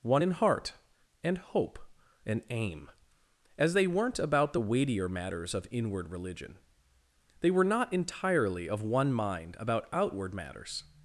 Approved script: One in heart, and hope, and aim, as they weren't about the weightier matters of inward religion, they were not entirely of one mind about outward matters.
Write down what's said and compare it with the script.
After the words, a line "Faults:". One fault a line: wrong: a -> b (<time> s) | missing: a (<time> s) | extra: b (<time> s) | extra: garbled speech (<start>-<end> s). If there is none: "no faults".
One in heart, and hope, and aim, as they weren't about the weightier matters of inward religion, they were not entirely of one mind about outward matters.
Faults:
no faults